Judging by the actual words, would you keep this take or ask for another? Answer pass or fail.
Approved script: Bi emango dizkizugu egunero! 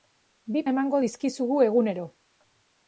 pass